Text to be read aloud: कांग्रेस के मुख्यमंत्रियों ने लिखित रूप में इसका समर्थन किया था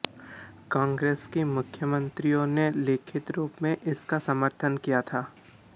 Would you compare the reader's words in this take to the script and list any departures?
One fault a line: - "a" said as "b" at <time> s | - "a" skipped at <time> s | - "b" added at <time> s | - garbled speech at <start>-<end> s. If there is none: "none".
none